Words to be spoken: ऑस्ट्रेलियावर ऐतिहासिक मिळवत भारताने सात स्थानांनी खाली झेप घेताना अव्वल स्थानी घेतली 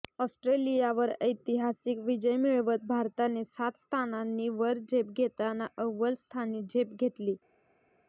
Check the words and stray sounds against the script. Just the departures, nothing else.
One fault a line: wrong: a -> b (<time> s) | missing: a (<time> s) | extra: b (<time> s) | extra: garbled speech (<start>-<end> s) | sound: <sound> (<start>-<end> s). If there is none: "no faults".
extra: विजय (2.0 s)
wrong: खाली -> वर (4.5 s)
extra: झेप (6.6 s)